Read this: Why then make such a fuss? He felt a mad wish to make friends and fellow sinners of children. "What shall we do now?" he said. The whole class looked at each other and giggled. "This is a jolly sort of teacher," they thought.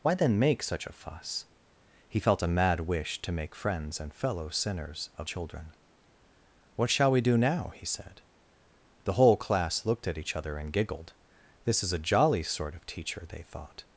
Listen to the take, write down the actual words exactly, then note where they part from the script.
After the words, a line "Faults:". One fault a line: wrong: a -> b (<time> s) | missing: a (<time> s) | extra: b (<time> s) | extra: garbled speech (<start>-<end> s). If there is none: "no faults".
Why then make such a fuss? He felt a mad wish to make friends and fellow sinners of children. "What shall we do now?" he said. The whole class looked at each other and giggled. "This is a jolly sort of teacher," they thought.
Faults:
no faults